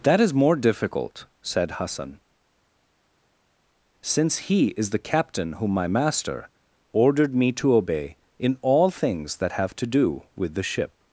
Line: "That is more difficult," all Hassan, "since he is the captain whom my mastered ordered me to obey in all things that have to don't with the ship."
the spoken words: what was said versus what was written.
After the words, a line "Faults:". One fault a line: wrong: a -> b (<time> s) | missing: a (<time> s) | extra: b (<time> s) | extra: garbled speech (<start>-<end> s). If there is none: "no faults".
"That is more difficult," said Hassan, "since he is the captain whom my master ordered me to obey in all things that have to do with the ship."
Faults:
wrong: all -> said (1.4 s)
wrong: mastered -> master (5.9 s)
wrong: don't -> do (9.9 s)